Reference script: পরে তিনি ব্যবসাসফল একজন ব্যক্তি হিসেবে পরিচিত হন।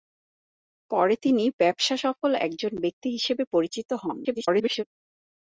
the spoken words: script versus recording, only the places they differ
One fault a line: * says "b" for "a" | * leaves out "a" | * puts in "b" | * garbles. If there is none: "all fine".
* garbles